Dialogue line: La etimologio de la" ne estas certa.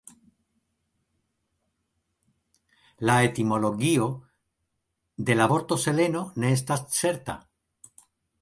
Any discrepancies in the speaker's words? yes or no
yes